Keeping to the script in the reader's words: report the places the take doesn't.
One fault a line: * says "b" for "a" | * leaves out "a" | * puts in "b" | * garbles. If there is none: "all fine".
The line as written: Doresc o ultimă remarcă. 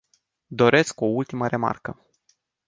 all fine